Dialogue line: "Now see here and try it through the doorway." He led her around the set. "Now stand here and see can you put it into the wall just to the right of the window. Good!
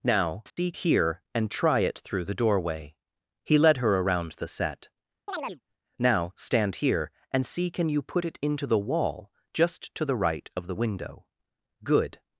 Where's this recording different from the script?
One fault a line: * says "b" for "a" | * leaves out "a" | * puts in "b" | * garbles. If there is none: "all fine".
all fine